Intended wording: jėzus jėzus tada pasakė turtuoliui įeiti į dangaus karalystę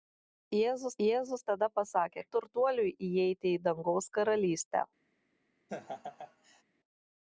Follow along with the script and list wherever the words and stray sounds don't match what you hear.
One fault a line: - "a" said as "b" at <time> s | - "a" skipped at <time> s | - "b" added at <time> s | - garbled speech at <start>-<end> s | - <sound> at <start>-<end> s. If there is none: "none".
- laugh at 5.7-6.6 s